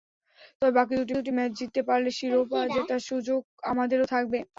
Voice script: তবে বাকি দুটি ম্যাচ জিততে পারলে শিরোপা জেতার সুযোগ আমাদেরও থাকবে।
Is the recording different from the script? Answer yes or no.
yes